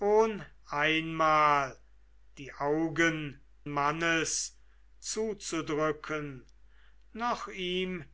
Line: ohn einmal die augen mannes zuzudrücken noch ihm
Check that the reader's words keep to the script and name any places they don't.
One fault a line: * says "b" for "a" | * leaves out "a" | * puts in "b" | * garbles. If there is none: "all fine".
all fine